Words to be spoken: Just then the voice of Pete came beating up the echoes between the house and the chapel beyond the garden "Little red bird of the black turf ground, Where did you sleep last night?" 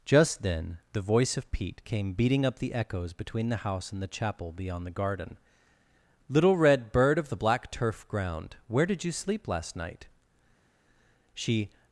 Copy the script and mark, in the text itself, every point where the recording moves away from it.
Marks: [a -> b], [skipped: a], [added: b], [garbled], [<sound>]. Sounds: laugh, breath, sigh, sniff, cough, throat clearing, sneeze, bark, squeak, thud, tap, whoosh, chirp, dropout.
Just then the voice of Pete came beating up the echoes between the house and the chapel beyond the garden "Little red bird of the black turf ground, Where did you sleep last night?" [added: She]